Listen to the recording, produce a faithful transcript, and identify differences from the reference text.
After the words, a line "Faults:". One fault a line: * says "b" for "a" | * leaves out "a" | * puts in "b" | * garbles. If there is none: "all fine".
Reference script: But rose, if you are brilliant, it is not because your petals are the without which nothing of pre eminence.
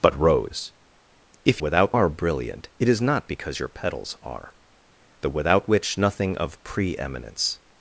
But rose, if without are brilliant, it is not because your petals are the without which nothing of pre eminence.
Faults:
* says "without" for "you"